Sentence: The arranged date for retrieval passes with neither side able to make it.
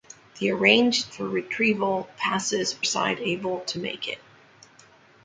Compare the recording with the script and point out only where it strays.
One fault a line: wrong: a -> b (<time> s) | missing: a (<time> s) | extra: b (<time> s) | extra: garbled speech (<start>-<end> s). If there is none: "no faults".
missing: date (1.1 s)
missing: with neither (2.8 s)